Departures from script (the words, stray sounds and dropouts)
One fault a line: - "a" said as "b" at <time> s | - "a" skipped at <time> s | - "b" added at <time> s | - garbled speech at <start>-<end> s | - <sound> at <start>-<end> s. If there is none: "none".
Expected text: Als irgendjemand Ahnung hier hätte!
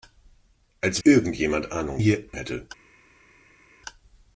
none